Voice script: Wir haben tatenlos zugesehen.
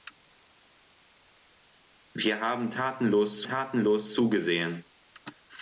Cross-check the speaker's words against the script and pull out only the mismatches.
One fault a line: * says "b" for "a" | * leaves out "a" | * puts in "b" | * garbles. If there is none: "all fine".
* puts in "tatenlos"